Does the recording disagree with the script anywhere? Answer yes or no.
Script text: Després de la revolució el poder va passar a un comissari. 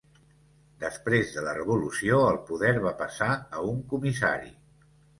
no